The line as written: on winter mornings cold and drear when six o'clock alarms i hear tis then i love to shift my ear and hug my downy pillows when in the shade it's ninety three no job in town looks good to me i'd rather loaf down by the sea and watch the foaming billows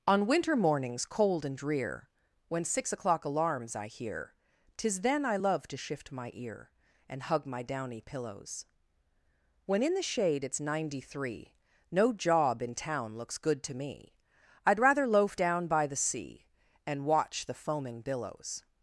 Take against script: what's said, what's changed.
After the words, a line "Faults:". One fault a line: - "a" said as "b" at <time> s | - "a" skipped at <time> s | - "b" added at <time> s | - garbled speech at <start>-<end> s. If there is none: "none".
on winter mornings cold and drear when six o'clock alarms i hear tis then i love to shift my ear and hug my downy pillows when in the shade it's ninety three no job in town looks good to me i'd rather loaf down by the sea and watch the foaming billows
Faults:
none